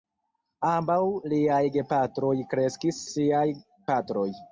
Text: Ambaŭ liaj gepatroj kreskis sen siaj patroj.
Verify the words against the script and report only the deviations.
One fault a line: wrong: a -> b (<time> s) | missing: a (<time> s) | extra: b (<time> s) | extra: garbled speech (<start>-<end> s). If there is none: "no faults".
missing: sen (3.0 s)